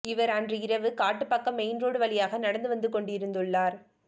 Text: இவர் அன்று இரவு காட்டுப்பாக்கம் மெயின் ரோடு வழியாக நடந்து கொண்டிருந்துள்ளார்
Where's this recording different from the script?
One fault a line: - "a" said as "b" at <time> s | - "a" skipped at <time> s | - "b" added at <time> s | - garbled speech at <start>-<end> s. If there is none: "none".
- "வந்து" added at 2.7 s